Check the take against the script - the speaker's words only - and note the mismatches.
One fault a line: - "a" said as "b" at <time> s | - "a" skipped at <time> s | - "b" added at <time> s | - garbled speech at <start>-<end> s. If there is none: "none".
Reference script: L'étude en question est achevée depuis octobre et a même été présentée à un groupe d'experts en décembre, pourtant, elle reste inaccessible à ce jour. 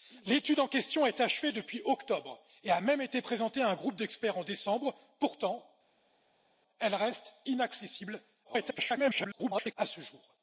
- garbled speech at 8.4-9.7 s